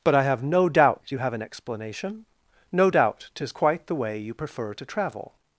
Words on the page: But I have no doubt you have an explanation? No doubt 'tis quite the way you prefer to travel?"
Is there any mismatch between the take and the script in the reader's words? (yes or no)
no